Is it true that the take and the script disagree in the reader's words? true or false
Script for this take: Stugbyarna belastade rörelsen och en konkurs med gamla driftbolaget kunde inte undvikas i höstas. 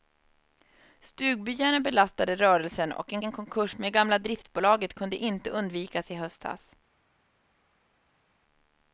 true